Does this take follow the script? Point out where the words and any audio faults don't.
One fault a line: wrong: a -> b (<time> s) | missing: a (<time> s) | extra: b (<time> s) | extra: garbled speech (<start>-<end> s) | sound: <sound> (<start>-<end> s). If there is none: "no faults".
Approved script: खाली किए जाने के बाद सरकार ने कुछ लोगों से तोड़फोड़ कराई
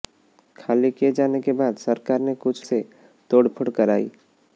missing: लोगों (2.7 s)